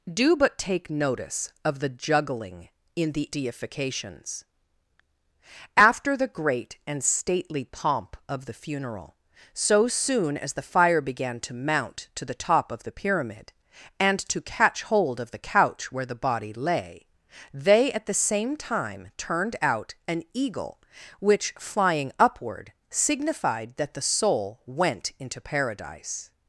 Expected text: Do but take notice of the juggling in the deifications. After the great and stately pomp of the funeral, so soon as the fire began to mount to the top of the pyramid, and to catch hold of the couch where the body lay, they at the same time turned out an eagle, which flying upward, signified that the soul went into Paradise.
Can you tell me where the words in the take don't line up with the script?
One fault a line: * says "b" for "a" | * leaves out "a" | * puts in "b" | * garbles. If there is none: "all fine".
all fine